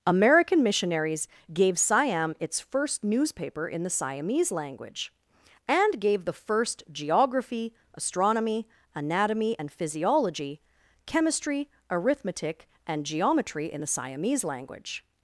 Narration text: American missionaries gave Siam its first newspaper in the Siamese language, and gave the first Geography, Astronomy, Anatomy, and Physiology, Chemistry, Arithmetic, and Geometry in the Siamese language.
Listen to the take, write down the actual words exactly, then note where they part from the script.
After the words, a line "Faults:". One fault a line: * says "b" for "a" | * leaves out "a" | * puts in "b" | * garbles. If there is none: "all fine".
American missionaries gave Siam its first newspaper in the Siamese language, and gave the first Geography, Astronomy, Anatomy, and Physiology, Chemistry, Arithmetic, and Geometry in the Siamese language.
Faults:
all fine